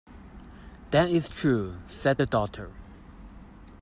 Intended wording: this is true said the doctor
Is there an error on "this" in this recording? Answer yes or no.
yes